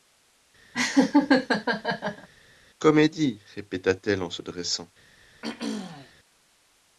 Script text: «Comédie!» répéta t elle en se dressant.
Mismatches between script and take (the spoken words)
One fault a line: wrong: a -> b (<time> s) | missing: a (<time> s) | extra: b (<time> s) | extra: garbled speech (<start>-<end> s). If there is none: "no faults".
no faults